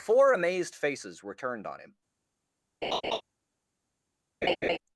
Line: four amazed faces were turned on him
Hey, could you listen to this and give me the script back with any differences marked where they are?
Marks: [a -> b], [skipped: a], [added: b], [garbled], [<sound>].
four amazed faces were turned on him [laugh] [laugh]